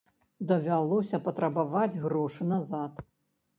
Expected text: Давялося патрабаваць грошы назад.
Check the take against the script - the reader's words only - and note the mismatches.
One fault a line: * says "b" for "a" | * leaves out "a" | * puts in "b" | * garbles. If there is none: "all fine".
all fine